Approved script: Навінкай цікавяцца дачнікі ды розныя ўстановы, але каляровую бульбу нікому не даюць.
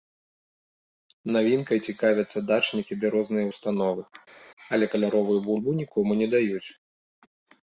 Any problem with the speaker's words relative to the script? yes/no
no